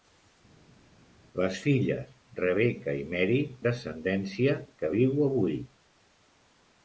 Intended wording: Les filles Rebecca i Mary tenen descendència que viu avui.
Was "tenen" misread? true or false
true